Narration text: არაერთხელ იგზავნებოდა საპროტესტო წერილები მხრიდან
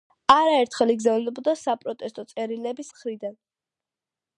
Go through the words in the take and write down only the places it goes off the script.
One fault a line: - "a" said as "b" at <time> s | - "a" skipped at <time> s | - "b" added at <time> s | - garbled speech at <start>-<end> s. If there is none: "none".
none